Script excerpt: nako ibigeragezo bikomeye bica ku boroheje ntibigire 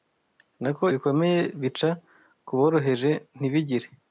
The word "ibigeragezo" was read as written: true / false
false